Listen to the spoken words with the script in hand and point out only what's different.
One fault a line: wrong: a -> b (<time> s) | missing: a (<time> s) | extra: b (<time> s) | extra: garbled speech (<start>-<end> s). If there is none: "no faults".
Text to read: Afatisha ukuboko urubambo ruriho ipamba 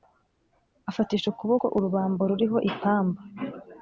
no faults